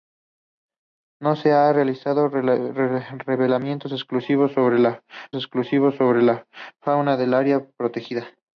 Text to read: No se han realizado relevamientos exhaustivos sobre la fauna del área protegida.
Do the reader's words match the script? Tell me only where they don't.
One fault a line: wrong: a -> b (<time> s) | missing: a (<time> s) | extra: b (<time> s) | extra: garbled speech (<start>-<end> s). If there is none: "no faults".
extra: exhaustivos sobre la (5.3 s)